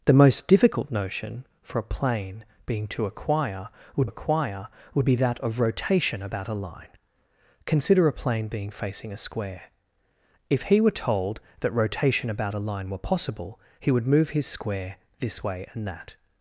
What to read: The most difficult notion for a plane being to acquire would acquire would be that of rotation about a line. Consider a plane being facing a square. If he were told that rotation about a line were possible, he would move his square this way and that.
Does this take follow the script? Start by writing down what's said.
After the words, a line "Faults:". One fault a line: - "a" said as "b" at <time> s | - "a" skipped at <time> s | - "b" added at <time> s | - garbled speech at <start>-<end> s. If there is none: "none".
The most difficult notion for a plane being to acquire would acquire would be that of rotation about a line. Consider a plane being facing a square. If he were told that rotation about a line were possible, he would move his square this way and that.
Faults:
none